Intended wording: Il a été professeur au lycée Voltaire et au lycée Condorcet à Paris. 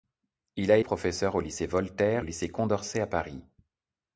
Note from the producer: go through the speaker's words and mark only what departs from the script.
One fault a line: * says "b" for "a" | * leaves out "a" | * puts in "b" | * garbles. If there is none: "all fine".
* leaves out "été"
* leaves out "et"